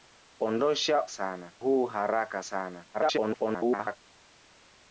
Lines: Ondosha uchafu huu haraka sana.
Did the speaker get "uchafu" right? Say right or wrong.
wrong